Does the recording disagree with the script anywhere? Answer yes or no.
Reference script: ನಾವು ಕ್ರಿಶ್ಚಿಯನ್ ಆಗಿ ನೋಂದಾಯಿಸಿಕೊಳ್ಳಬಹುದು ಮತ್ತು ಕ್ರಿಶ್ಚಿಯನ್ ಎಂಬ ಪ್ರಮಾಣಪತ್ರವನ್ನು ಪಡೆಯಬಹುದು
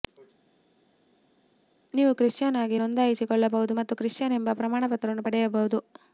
yes